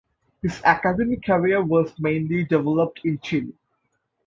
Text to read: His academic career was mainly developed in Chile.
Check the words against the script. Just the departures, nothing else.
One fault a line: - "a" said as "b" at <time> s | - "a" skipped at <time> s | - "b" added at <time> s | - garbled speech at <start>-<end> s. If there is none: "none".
none